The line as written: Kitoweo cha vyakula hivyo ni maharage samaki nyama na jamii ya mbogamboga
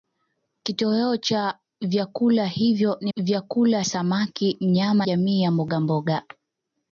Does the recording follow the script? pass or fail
fail